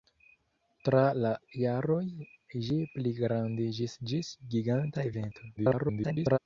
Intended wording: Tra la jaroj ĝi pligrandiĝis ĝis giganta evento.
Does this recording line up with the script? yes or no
no